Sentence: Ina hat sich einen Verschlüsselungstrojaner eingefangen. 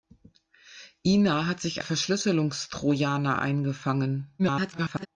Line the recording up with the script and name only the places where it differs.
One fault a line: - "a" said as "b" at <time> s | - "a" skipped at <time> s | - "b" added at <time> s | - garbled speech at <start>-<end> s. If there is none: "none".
- "einen" skipped at 1.8 s
- garbled speech at 4.4-5.1 s